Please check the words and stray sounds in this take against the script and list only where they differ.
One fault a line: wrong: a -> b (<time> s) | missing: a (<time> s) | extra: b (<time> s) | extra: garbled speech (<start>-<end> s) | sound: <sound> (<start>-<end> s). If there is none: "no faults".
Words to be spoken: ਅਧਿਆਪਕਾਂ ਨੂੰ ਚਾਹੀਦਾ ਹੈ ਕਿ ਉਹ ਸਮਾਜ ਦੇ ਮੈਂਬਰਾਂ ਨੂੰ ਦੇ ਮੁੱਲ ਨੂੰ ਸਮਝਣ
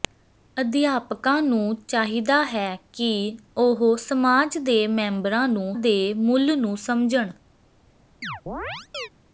sound: chirp (8.2-9.1 s)